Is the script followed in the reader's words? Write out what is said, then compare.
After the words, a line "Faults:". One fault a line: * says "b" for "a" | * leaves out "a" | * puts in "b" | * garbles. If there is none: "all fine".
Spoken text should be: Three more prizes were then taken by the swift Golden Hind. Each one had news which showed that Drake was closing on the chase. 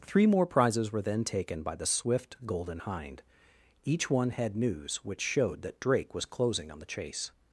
Three more prizes were then taken by the swift Golden Hind. Each one had news which showed that Drake was closing on the chase.
Faults:
all fine